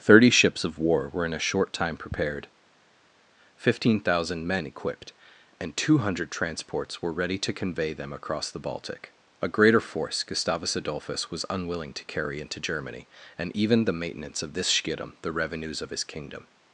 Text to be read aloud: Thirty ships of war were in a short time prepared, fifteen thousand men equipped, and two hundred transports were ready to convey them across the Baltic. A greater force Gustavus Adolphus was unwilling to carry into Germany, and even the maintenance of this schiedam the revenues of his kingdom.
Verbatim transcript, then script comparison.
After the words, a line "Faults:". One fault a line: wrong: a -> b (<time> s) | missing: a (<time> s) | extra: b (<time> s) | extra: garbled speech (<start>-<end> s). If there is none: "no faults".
Thirty ships of war were in a short time prepared, fifteen thousand men equipped, and two hundred transports were ready to convey them across the Baltic. A greater force Gustavus Adolphus was unwilling to carry into Germany, and even the maintenance of this schiedam the revenues of his kingdom.
Faults:
no faults